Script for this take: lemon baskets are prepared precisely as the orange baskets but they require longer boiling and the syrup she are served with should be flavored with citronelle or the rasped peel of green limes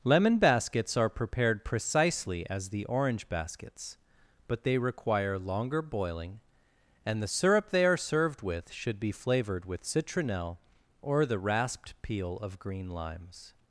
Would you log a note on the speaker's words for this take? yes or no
yes